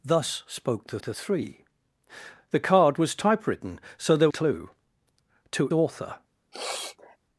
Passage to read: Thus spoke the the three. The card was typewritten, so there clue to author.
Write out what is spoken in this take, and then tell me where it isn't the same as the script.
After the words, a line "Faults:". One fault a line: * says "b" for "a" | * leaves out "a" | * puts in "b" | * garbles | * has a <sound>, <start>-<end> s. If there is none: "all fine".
Thus spoke the the three. The card was typewritten, so there clue to author.
Faults:
* has a sniff, 6.5-7.2 s